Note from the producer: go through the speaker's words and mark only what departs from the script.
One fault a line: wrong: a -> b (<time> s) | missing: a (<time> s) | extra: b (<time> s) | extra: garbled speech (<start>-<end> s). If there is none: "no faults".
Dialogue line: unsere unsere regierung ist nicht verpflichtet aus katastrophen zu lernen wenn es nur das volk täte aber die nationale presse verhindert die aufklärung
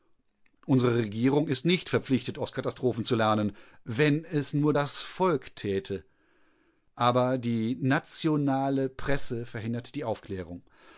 missing: unsere (0.9 s)